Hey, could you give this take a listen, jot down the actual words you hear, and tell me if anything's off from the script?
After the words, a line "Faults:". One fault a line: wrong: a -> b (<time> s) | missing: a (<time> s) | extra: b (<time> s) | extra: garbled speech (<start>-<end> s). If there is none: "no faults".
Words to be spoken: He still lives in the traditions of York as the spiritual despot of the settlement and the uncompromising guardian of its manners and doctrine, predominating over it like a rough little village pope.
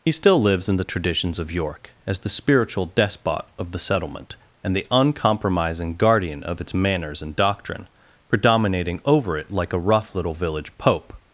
He still lives in the traditions of York as the spiritual despot of the settlement and the uncompromising guardian of its manners and doctrine, predominating over it like a rough little village pope.
Faults:
no faults